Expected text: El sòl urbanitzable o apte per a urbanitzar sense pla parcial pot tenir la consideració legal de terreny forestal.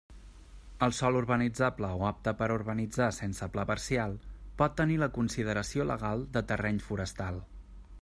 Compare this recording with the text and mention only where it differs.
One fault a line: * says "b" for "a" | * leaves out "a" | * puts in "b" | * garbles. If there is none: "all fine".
all fine